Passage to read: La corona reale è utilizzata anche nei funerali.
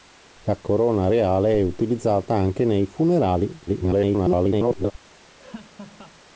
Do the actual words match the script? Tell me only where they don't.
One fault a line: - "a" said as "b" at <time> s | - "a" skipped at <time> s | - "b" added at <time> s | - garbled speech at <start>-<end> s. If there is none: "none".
- garbled speech at 3.7-4.9 s